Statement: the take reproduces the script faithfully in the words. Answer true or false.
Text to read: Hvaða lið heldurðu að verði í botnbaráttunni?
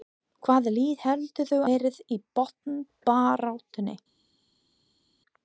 false